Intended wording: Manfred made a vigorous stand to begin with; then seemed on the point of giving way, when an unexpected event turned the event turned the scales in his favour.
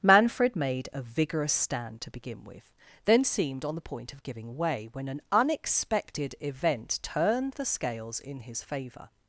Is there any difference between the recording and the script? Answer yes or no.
yes